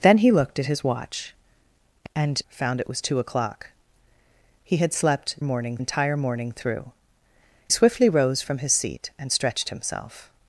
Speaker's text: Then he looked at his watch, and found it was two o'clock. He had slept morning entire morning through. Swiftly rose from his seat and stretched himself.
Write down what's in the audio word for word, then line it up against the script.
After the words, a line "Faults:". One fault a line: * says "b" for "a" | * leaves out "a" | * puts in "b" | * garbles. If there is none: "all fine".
Then he looked at his watch, and found it was two o'clock. He had slept morning entire morning through. Swiftly rose from his seat and stretched himself.
Faults:
all fine